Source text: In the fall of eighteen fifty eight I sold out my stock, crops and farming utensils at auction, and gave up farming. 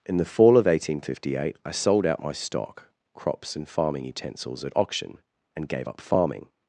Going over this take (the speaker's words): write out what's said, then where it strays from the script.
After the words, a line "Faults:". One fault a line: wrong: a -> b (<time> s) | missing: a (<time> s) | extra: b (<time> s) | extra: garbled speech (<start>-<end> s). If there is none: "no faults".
In the fall of eighteen fifty eight I sold out my stock, crops and farming utensils at auction, and gave up farming.
Faults:
no faults